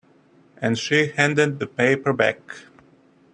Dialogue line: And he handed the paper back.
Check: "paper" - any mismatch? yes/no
no